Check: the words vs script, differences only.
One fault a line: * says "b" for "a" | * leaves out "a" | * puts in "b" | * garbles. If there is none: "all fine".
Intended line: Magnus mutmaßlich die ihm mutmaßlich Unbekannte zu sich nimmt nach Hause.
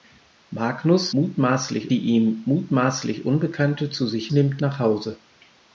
all fine